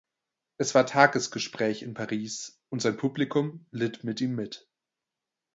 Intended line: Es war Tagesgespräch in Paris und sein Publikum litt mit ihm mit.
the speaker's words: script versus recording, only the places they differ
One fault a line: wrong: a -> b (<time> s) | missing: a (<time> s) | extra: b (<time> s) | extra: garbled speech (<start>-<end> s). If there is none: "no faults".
no faults